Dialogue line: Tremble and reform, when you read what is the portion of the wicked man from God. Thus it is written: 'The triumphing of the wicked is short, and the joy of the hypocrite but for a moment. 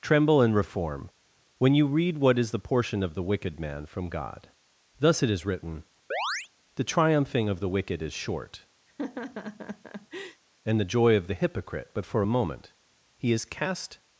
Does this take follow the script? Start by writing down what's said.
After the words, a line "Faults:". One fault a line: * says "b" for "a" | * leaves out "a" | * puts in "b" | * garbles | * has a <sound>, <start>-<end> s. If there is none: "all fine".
Tremble and reform, when you read what is the portion of the wicked man from God. Thus it is written: 'The triumphing of the wicked is short, and the joy of the hypocrite but for a moment. He is cast
Faults:
* has a chirp, 6.1-6.5 s
* has a laugh, 8.9-10.4 s
* puts in "He is cast"